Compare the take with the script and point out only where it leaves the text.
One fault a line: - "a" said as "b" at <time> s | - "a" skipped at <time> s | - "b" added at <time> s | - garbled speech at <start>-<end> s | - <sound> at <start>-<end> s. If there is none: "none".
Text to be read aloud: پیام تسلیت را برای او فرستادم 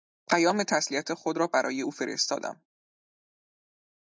- "خود" added at 1.1 s